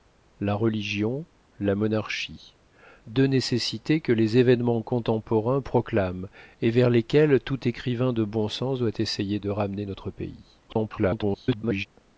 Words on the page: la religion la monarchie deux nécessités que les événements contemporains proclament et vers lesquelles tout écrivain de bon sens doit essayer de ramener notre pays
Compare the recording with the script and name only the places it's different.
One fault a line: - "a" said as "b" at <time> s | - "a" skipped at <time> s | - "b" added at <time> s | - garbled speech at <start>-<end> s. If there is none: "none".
- garbled speech at 10.7-11.9 s